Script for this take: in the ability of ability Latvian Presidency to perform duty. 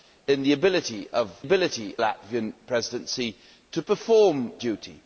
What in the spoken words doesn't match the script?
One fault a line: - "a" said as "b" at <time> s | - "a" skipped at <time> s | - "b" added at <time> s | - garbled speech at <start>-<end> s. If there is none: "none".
none